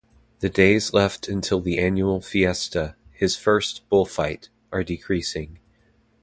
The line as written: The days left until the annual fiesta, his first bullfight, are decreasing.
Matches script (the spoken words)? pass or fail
pass